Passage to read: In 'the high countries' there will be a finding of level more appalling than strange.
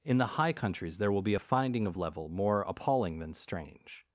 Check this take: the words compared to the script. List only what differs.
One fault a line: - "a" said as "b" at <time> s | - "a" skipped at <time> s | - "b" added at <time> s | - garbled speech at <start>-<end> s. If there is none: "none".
none